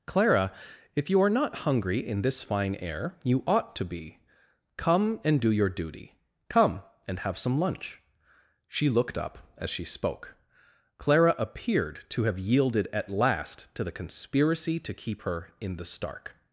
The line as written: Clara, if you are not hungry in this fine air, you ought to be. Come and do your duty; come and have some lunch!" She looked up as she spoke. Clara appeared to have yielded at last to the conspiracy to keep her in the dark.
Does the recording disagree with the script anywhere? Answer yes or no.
yes